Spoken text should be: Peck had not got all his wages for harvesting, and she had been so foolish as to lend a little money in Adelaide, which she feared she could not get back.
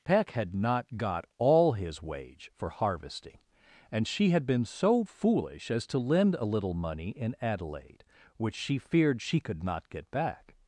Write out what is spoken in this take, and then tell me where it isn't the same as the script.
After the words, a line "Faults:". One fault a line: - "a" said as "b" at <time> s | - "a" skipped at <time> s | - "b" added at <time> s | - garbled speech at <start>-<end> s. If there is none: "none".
Peck had not got all his wage for harvesting, and she had been so foolish as to lend a little money in Adelaide, which she feared she could not get back.
Faults:
- "wages" said as "wage" at 2.0 s